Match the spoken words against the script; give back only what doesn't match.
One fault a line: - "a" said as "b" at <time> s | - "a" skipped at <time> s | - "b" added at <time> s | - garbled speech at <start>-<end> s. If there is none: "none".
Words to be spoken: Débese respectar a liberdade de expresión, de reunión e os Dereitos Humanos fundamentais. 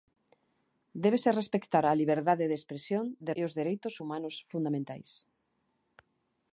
- "reunión" skipped at 3.3 s